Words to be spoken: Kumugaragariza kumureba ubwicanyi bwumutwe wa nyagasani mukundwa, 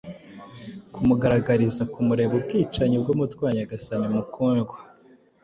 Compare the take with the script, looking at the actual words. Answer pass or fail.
pass